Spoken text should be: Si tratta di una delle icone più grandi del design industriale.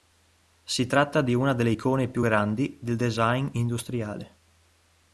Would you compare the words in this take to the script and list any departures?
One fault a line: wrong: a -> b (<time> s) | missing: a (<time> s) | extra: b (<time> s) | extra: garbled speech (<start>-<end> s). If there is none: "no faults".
no faults